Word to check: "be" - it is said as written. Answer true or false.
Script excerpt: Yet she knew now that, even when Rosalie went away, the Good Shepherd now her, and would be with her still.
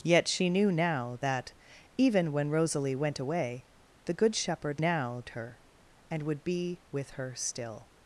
true